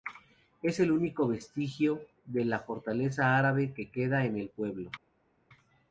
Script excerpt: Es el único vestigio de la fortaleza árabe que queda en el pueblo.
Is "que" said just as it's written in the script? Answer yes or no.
yes